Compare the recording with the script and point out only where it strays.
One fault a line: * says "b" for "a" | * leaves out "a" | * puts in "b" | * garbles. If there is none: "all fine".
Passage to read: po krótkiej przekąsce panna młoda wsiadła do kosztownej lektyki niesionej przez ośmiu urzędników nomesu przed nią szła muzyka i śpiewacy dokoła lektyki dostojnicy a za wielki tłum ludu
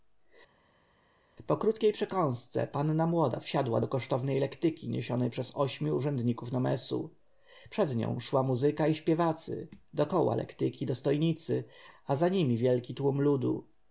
* puts in "nimi"